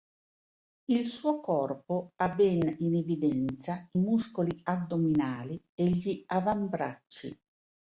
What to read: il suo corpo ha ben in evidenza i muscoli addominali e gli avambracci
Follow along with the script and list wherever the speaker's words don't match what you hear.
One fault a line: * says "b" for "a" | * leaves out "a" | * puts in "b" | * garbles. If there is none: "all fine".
all fine